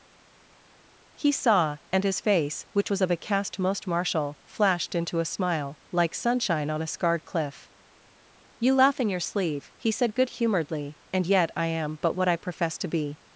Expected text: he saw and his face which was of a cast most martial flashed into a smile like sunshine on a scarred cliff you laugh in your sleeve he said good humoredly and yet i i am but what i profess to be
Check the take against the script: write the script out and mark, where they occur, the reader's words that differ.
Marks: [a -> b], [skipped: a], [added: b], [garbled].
he saw and his face which was of a cast most martial flashed into a smile like sunshine on a scarred cliff you laugh in your sleeve he said good humoredly and yet i [skipped: i] am but what i profess to be